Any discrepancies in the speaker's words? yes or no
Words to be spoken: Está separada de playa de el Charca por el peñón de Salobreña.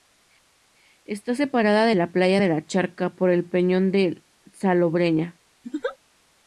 yes